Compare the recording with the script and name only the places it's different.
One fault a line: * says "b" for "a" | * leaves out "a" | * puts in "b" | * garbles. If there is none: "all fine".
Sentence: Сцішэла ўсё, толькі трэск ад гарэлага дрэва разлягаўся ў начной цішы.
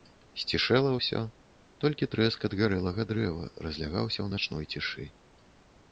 all fine